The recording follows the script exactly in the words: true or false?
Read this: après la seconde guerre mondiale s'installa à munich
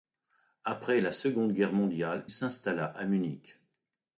true